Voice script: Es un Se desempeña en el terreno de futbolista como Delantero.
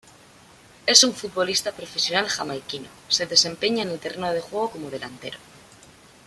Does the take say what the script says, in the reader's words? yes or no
no